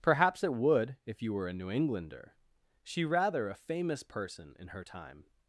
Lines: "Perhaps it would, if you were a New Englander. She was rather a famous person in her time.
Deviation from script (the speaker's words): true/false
true